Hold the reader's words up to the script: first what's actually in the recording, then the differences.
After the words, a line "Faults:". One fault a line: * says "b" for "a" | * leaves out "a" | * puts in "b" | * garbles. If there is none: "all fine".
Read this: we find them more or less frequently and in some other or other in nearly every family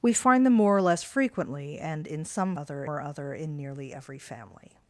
we find them more or less frequently and in some other or other in nearly every family
Faults:
all fine